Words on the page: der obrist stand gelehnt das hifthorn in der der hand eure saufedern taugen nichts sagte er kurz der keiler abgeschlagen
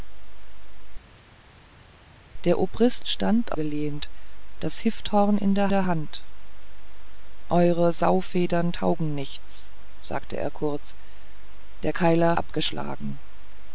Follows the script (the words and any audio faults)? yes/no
yes